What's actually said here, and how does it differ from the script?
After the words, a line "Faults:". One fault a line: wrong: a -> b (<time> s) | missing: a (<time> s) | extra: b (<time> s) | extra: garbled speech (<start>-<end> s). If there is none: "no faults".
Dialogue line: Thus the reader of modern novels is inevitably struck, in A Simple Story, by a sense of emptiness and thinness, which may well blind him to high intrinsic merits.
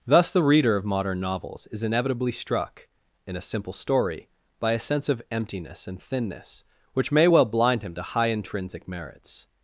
Thus the reader of modern novels is inevitably struck, in A Simple Story, by a sense of emptiness and thinness, which may well blind him to high intrinsic merits.
Faults:
no faults